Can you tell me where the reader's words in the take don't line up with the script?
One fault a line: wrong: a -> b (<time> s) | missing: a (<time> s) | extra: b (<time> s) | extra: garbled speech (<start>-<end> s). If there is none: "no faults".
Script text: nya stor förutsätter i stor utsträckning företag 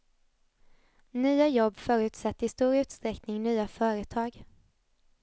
wrong: stor -> jobb (1.5 s)
extra: nya (3.4 s)